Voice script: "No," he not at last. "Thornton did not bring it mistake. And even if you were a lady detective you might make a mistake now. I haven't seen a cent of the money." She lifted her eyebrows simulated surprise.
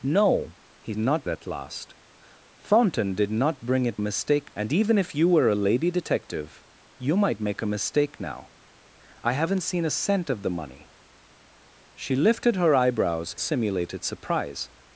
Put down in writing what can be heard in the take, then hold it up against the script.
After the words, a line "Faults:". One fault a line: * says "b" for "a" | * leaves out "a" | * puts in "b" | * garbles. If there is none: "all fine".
"No," he not at last. "Thornton did not bring it mistake. And even if you were a lady detective you might make a mistake now. I haven't seen a cent of the money." She lifted her eyebrows simulated surprise.
Faults:
all fine